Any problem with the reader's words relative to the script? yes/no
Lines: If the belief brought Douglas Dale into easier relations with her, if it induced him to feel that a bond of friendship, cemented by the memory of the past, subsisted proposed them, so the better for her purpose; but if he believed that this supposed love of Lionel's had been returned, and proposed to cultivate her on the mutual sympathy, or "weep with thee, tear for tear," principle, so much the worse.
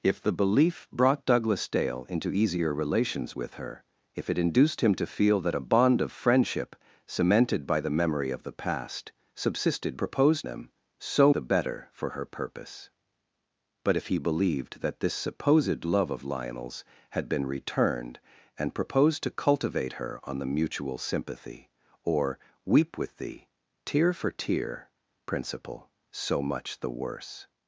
no